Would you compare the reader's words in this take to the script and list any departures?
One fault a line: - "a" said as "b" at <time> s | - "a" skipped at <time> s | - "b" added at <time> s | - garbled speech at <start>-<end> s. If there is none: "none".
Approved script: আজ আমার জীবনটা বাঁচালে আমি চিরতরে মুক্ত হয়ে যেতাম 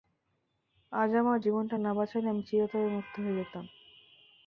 - "না" added at 1.8 s